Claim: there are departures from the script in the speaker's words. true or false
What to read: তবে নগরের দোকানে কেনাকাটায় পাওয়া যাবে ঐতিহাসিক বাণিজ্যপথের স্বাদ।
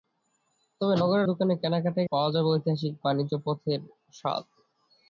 false